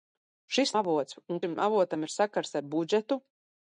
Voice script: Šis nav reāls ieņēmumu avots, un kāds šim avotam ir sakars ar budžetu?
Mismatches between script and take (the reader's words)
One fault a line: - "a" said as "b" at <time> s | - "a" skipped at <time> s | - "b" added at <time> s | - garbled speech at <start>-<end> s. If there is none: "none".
- "nav reāls ieņēmumu" skipped at 0.7 s
- "kāds" skipped at 1.4 s